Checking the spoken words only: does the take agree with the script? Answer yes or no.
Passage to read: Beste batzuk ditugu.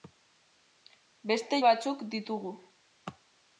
yes